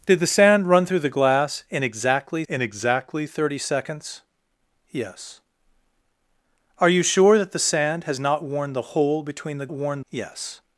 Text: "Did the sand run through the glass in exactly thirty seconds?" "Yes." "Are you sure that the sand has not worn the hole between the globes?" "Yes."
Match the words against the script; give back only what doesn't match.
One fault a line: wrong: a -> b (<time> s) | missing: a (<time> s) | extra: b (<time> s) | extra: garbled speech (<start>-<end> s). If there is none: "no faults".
extra: in exactly (2.5 s)
wrong: globes -> worn (9.7 s)